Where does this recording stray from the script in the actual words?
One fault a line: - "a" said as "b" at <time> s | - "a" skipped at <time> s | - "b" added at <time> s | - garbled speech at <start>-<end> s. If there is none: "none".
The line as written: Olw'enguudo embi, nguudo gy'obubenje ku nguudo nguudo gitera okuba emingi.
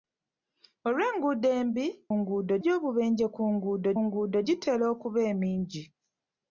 none